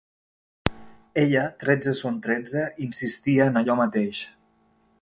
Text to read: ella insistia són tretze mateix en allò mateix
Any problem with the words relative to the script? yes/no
yes